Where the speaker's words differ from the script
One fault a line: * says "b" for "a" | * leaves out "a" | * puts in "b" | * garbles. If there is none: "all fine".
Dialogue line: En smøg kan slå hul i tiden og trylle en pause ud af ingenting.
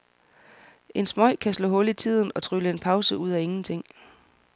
all fine